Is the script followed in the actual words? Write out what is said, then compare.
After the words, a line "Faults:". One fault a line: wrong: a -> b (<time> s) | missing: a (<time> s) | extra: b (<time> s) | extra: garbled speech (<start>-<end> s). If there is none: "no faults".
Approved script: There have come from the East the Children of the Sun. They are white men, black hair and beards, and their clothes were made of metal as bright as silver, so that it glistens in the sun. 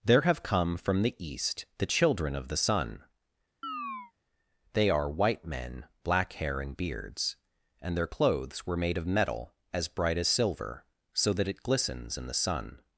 There have come from the East the Children of the Sun. They are white men, black hair and beards, and their clothes were made of metal as bright as silver, so that it glistens in the sun.
Faults:
no faults